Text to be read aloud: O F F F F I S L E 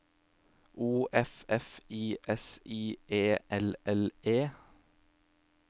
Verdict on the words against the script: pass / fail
fail